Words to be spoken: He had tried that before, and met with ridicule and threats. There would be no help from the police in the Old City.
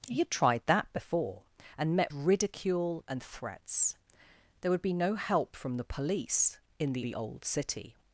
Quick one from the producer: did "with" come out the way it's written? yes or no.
no